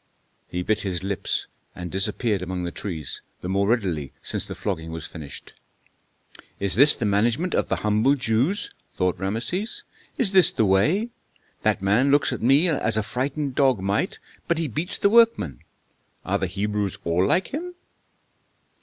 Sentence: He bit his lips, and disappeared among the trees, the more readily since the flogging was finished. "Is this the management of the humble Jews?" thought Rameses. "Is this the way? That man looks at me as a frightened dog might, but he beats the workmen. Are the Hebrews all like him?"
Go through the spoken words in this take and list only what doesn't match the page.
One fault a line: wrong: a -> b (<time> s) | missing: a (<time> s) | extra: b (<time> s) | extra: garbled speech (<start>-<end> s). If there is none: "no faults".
no faults